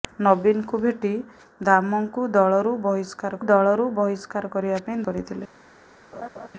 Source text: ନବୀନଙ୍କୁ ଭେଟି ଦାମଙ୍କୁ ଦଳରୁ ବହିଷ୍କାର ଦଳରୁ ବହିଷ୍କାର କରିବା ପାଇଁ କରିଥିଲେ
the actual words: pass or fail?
pass